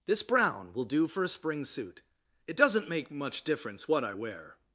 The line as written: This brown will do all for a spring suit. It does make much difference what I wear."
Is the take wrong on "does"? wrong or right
wrong